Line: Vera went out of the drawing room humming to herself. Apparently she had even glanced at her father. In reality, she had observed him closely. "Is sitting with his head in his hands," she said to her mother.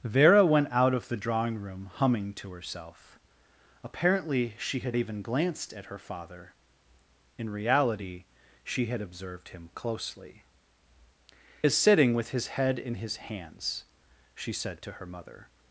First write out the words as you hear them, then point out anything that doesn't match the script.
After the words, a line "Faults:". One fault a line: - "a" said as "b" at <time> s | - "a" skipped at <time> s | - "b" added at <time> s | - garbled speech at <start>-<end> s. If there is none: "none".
Vera went out of the drawing room humming to herself. Apparently she had even glanced at her father. In reality, she had observed him closely. "Is sitting with his head in his hands," she said to her mother.
Faults:
none